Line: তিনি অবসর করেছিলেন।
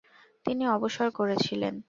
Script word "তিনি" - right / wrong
right